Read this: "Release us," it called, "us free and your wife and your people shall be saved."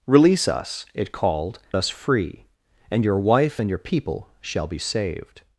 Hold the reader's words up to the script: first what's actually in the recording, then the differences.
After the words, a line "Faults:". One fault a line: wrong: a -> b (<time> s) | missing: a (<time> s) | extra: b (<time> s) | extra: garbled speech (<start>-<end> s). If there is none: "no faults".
"Release us," it called, "us free and your wife and your people shall be saved."
Faults:
no faults